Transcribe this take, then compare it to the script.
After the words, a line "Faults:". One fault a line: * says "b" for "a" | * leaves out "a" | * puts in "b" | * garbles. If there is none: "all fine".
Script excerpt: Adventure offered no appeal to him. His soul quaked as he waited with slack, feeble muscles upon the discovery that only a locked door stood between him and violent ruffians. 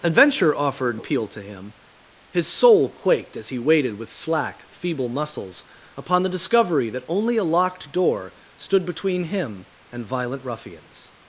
Adventure offered appeal to him. His soul quaked as he waited with slack, feeble muscles upon the discovery that only a locked door stood between him and violent ruffians.
Faults:
* leaves out "no"